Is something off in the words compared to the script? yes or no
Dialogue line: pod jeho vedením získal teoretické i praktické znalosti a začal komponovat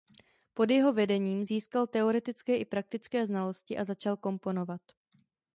no